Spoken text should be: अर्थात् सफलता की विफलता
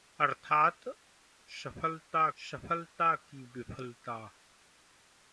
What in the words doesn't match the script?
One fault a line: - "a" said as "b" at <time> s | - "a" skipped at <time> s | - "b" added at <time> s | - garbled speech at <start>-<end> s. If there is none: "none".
- "सफलता" added at 2.4 s